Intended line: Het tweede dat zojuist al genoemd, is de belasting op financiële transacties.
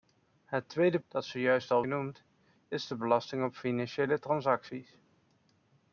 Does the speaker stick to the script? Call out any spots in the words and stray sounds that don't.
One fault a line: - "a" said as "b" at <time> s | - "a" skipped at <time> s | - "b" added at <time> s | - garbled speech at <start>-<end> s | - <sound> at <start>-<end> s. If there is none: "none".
none